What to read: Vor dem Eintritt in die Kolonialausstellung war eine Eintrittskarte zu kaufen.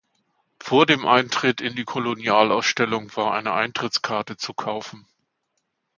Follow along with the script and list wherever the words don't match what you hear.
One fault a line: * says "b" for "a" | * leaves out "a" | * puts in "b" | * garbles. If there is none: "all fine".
all fine